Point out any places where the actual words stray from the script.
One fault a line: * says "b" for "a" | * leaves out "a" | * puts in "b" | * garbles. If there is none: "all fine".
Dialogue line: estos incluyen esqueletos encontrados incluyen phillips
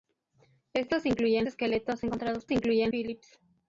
all fine